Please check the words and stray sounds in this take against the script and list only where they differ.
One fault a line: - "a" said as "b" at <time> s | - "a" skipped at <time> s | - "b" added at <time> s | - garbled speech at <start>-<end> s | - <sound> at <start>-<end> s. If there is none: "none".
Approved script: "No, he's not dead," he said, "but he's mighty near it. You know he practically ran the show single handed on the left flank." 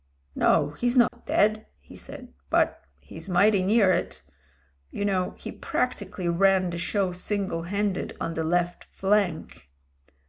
- dropout at 1.1-1.1 s